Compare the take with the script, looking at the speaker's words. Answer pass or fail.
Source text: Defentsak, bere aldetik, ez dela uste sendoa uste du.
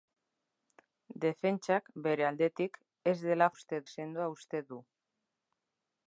pass